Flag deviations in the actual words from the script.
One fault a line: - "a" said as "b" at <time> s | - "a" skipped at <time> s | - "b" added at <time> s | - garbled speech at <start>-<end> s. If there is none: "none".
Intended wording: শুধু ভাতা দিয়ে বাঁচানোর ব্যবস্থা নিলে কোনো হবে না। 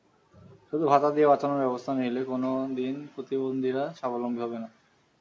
- "দিন প্রতিবন্ধীরা স্বাবলম্বী" added at 2.8 s